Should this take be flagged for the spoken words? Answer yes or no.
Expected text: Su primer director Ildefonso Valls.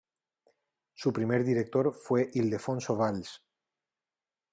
yes